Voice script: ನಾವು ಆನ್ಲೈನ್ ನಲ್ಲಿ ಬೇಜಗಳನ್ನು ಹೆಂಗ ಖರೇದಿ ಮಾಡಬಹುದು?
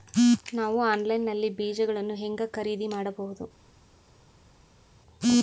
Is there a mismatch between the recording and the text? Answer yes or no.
no